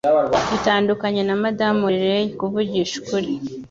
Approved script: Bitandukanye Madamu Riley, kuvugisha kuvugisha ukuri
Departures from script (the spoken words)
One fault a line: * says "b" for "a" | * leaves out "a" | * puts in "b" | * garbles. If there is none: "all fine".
* puts in "na"
* leaves out "kuvugisha"